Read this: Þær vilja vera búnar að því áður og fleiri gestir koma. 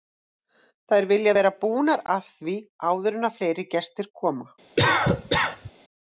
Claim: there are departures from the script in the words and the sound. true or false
true